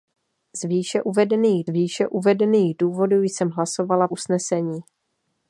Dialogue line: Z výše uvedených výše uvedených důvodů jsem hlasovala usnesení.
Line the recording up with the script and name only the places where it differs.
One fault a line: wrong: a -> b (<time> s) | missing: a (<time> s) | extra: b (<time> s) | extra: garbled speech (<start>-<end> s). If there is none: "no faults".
no faults